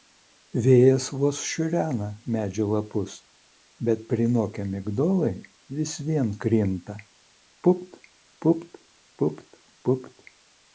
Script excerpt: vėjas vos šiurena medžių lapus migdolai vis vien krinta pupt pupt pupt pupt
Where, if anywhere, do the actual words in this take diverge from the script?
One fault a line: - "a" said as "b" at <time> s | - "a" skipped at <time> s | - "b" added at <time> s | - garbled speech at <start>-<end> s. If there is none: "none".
- "bet prinokę" added at 3.9 s